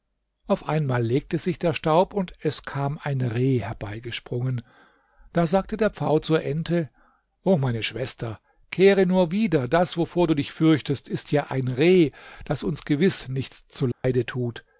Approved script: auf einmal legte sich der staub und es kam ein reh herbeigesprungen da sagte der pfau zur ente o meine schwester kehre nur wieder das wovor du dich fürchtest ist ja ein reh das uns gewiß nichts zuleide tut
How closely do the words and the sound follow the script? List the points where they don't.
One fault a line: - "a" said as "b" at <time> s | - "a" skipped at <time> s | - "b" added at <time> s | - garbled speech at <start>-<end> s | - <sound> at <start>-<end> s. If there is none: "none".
- dropout at 13.9-14.0 s